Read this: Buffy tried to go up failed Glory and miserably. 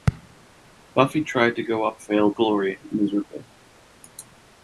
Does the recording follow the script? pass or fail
pass